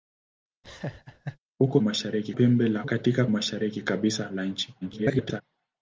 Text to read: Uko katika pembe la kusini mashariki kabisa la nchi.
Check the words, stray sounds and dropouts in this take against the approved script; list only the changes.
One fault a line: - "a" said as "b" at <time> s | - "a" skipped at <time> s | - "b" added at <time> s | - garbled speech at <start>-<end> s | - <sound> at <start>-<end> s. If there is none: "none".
- laugh at 0.6-1.4 s
- "katika" said as "mashariki" at 1.8 s
- "kusini" said as "katika" at 2.8 s
- garbled speech at 4.8-5.4 s